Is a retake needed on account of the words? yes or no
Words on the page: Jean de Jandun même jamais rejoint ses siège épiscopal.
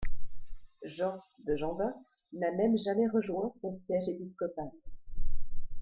yes